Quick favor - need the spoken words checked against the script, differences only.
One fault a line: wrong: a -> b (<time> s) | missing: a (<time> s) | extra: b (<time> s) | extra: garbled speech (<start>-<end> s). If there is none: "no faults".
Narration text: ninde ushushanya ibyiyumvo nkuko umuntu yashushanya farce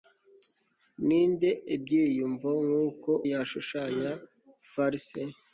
missing: ushushanya (1.5 s)
missing: umuntu (3.1 s)